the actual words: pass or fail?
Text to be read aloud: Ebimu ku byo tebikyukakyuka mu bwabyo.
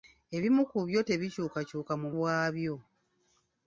pass